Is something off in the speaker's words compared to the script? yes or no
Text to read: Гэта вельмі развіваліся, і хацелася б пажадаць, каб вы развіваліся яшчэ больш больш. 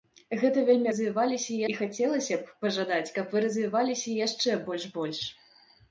no